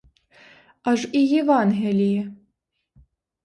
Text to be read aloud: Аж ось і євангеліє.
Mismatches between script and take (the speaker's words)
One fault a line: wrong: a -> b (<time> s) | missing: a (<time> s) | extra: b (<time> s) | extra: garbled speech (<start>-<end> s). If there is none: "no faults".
missing: ось (1.1 s)